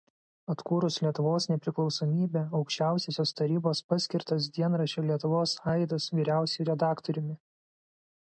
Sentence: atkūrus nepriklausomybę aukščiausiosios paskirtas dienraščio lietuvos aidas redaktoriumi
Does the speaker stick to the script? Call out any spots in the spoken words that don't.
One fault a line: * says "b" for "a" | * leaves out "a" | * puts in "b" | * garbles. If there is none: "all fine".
* puts in "lietuvos"
* puts in "tarybos"
* puts in "vyriausiuoju"